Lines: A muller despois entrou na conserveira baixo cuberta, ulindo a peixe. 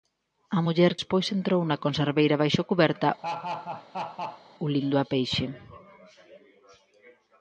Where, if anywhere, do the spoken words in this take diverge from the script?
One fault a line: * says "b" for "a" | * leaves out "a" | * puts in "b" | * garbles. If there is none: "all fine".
all fine